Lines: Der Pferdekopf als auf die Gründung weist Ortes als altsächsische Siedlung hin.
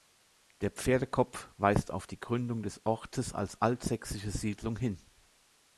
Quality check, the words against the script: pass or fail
fail